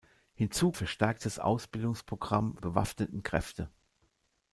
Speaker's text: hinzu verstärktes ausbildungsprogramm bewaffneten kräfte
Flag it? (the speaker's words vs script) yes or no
no